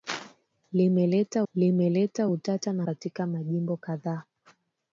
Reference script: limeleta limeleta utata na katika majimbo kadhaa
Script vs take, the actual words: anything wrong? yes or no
no